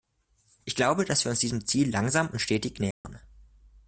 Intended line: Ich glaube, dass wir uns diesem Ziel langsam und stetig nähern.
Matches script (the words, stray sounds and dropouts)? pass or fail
fail